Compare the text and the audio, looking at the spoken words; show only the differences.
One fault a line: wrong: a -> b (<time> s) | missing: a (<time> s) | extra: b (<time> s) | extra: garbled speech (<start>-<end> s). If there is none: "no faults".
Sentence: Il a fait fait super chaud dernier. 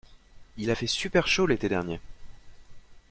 missing: fait (0.9 s)
extra: l'été (1.4 s)